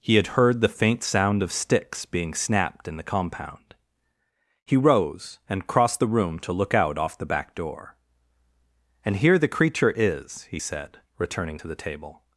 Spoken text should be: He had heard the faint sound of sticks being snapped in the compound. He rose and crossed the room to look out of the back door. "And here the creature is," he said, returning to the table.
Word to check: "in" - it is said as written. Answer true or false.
true